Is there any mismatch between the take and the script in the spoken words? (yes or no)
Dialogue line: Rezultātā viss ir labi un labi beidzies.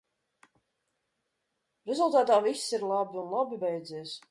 no